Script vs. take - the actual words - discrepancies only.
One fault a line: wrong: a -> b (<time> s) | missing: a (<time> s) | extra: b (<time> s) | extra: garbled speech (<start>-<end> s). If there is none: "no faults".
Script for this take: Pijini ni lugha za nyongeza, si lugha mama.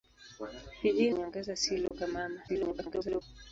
missing: ni lugha za (1.1 s)
extra: garbled speech (2.5-3.2 s)